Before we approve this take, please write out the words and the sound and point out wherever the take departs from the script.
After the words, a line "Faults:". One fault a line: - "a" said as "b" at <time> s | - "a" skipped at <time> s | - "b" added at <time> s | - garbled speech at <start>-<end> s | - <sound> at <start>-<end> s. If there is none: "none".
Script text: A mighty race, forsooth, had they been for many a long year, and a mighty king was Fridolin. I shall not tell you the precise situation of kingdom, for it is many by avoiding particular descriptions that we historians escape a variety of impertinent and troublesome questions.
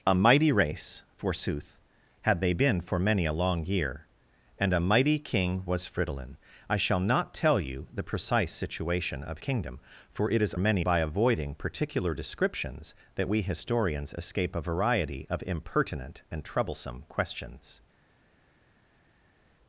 A mighty race, forsooth, had they been for many a long year, and a mighty king was Fridolin. I shall not tell you the precise situation of kingdom, for it is many by avoiding particular descriptions that we historians escape a variety of impertinent and troublesome questions.
Faults:
none